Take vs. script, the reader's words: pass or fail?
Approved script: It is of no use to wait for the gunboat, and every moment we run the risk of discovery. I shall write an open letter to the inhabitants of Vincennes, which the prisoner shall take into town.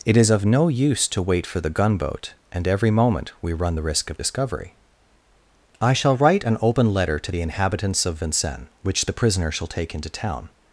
pass